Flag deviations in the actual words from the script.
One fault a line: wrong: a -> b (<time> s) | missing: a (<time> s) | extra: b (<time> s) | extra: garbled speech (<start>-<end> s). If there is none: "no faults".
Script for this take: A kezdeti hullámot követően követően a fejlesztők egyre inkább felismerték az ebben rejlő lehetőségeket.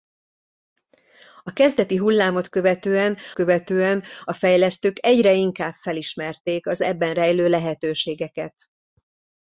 no faults